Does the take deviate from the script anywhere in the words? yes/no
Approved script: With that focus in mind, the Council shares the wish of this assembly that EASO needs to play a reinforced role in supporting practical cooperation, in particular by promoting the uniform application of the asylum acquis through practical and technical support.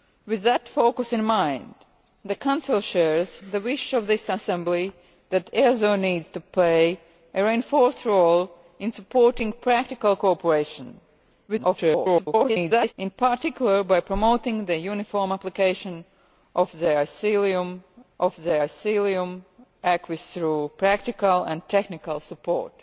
yes